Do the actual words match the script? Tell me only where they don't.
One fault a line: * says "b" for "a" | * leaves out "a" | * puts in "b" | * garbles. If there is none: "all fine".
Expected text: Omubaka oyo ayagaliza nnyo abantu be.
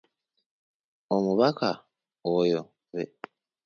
* leaves out "ayagaliza nnyo abantu"